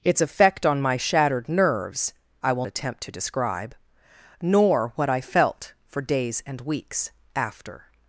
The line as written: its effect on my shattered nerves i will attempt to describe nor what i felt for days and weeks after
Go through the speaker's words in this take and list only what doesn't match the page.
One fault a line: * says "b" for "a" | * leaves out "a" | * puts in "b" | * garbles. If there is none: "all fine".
all fine